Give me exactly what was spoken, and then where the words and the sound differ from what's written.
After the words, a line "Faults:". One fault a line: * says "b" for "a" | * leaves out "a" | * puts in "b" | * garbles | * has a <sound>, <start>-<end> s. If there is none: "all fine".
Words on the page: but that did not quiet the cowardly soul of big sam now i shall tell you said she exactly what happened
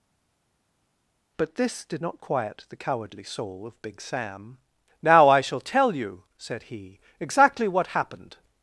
but this did not quiet the cowardly soul of big sam now i shall tell you said he exactly what happened
Faults:
* says "this" for "that"
* says "he" for "she"